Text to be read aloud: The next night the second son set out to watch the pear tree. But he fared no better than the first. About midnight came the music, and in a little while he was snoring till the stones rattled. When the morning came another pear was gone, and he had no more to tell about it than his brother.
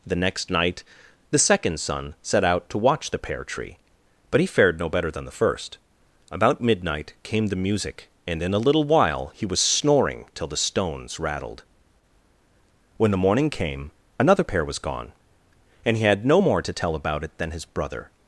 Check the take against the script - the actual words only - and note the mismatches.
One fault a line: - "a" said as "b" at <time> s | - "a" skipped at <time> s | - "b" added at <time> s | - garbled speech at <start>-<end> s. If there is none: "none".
none